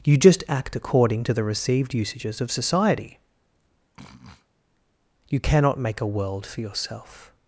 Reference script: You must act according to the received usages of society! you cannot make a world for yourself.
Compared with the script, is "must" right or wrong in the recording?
wrong